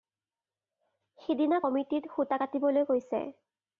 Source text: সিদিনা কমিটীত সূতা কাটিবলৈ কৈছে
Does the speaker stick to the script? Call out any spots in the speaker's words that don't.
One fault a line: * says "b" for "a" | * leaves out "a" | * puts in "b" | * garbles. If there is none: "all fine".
all fine